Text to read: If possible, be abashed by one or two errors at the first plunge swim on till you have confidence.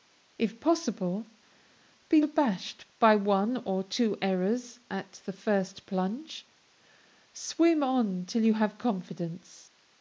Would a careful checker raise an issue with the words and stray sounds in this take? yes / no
no